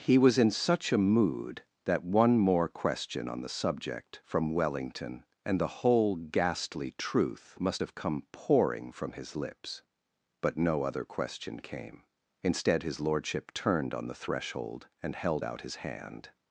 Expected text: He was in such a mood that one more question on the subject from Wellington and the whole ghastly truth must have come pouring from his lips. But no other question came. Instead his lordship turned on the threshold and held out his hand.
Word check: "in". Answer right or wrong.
right